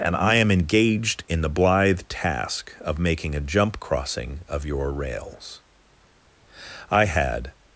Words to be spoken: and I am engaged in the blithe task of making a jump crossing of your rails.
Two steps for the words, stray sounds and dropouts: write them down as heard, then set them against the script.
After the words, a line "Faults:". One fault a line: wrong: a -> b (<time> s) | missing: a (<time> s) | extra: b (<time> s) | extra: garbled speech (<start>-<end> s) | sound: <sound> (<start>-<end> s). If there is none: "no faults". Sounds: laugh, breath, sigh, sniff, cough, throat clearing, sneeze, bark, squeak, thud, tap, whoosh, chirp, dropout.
and I am engaged in the blithe task of making a jump crossing of your rails. I had
Faults:
extra: I had (6.9 s)